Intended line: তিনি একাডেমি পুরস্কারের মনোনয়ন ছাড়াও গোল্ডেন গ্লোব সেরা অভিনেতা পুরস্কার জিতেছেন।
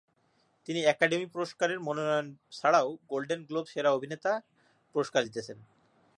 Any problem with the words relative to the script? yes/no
no